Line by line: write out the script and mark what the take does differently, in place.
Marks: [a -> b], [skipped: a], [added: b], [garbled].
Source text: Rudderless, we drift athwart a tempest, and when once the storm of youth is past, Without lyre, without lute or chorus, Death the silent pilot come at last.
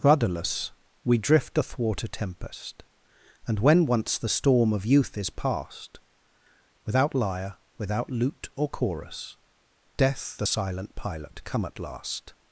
Rudderless, we drift athwart a tempest, and when once the storm of youth is past, Without lyre, without lute or chorus, Death the silent pilot come at last.